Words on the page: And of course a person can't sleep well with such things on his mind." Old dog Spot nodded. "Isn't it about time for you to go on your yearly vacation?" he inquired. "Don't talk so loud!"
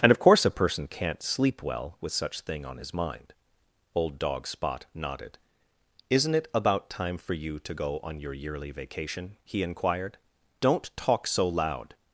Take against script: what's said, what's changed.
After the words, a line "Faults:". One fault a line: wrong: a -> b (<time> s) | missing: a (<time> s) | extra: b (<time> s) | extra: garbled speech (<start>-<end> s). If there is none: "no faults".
And of course a person can't sleep well with such thing on his mind." Old dog Spot nodded. "Isn't it about time for you to go on your yearly vacation?" he inquired. "Don't talk so loud!"
Faults:
wrong: things -> thing (2.4 s)